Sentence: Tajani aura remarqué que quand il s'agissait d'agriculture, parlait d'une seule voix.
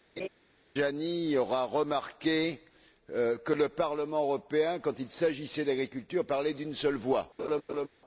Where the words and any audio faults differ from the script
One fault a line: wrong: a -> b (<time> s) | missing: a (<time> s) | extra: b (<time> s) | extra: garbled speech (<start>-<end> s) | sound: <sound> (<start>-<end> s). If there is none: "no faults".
sound: laugh (0.2-0.3 s)
extra: le Parlement européen (3.5 s)
sound: laugh (7.4-7.9 s)